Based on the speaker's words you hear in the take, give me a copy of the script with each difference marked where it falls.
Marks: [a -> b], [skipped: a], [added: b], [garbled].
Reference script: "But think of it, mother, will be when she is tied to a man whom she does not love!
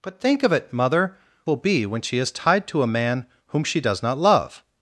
"But think of it, mother, will be when she is tied to a man whom she does not love!